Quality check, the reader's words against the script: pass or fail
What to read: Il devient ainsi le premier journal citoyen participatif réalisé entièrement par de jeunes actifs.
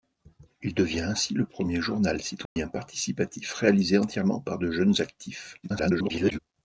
fail